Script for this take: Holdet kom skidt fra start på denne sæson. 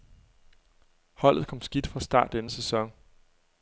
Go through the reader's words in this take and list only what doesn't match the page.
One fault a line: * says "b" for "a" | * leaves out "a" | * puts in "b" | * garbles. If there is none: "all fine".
* leaves out "på"